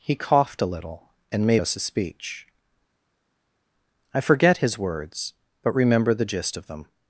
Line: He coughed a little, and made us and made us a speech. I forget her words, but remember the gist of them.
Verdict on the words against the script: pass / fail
fail